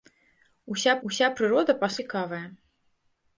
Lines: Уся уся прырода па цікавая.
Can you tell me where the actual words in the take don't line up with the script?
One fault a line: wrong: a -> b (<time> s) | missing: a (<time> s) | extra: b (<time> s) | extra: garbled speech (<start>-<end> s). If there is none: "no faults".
no faults